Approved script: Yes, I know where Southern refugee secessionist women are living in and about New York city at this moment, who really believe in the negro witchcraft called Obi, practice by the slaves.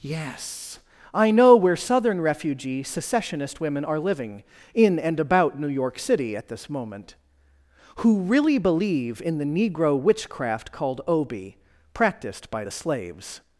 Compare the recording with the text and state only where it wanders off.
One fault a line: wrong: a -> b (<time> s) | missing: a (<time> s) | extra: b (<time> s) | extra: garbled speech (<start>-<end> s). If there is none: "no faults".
wrong: practice -> practiced (11.9 s)